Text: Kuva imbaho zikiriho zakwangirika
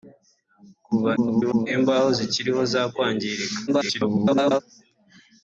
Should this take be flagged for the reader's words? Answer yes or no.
yes